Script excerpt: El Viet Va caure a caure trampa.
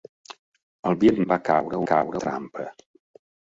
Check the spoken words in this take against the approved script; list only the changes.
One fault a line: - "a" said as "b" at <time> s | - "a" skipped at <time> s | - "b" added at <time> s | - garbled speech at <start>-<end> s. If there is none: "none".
none